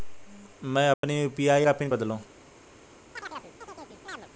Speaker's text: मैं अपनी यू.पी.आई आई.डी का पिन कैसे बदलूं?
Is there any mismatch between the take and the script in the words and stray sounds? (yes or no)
yes